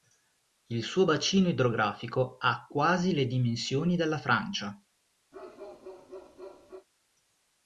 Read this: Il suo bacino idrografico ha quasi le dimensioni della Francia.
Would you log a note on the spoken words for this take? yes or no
no